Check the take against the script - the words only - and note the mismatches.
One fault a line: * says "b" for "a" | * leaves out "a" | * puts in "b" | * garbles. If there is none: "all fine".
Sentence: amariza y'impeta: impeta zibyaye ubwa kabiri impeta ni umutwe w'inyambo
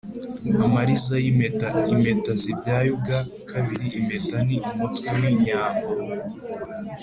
all fine